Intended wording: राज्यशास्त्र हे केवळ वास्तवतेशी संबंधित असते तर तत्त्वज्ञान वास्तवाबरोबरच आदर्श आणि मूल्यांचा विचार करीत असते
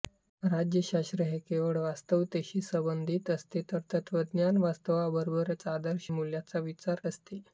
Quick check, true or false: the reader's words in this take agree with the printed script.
false